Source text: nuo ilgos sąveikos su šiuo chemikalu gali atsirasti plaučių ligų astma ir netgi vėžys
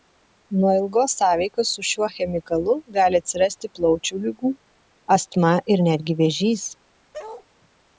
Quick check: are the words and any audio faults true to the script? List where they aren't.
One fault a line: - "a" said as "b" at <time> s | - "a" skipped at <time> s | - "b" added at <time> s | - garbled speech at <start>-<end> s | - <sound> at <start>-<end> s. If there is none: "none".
- bark at 7.1-7.5 s